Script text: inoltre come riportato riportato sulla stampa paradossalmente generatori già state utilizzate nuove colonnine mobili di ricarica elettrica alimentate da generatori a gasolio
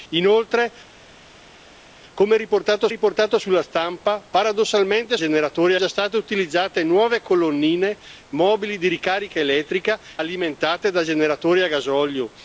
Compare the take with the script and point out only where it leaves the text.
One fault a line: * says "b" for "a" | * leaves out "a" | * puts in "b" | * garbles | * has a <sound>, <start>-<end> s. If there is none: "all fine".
all fine